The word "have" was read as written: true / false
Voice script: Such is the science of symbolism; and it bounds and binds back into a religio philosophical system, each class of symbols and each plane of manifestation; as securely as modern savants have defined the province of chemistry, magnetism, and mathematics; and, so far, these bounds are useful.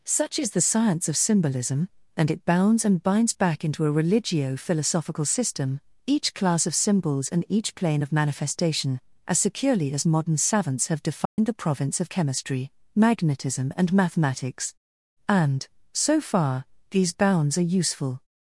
true